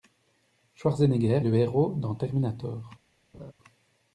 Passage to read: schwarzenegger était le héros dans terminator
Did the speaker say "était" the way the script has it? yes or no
no